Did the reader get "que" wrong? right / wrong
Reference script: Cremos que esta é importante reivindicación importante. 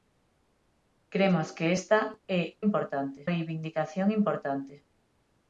right